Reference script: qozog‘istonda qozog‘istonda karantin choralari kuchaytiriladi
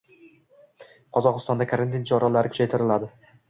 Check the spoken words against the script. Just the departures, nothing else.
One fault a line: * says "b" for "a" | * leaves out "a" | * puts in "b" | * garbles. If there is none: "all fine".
* leaves out "qozog‘istonda"